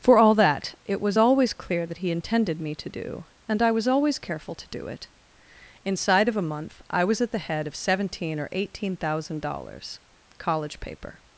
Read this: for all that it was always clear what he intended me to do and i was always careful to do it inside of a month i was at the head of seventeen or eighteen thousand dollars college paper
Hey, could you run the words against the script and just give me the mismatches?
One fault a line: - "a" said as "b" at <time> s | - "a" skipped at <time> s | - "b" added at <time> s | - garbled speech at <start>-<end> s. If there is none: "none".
- "what" said as "that" at 1.8 s